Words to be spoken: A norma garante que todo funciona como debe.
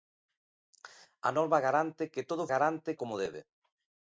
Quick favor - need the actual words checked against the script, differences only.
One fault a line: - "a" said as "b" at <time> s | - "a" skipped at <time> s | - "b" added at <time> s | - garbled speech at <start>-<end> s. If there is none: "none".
- "funciona" said as "garante" at 2.5 s